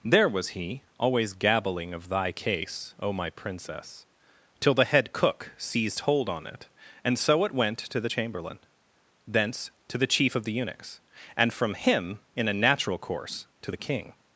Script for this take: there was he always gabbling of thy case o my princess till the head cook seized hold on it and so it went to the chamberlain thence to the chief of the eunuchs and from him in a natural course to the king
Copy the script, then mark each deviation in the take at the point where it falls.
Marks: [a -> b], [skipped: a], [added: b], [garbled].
there was he always gabbling of thy case o my princess till the head cook seized hold on it and so it went to the chamberlain thence to the chief of the eunuchs and from him in a natural course to the king